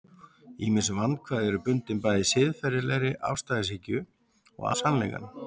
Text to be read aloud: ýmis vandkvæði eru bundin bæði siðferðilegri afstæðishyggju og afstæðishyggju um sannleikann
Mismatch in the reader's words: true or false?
true